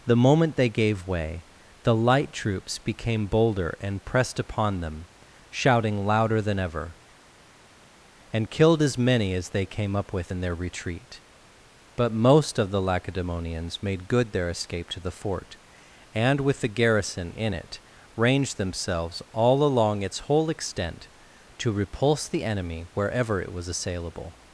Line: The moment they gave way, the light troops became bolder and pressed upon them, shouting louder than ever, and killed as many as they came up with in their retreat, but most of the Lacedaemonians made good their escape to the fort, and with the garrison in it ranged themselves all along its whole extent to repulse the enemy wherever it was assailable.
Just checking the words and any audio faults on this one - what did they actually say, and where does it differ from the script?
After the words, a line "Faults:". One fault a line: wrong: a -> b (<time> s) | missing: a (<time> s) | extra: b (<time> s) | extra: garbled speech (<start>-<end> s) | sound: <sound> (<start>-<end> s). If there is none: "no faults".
The moment they gave way, the light troops became bolder and pressed upon them, shouting louder than ever, and killed as many as they came up with in their retreat, but most of the Lacedaemonians made good their escape to the fort, and with the garrison in it ranged themselves all along its whole extent to repulse the enemy wherever it was assailable.
Faults:
no faults